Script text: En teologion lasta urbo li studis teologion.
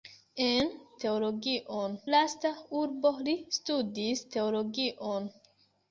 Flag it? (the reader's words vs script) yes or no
no